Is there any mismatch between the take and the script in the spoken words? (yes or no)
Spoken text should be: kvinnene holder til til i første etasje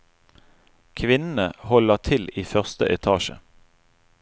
yes